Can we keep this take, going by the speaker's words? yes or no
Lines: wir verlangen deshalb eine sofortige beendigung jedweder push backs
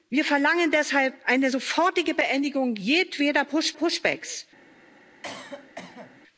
no